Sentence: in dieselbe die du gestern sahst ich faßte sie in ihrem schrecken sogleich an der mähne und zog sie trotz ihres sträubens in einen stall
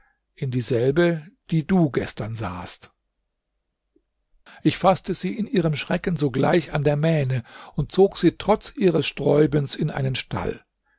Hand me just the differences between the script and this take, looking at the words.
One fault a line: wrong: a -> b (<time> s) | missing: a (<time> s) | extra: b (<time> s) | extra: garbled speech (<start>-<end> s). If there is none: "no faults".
no faults